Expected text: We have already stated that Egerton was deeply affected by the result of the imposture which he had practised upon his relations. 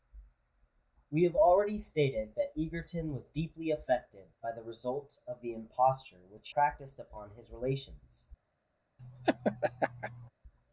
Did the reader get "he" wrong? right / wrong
wrong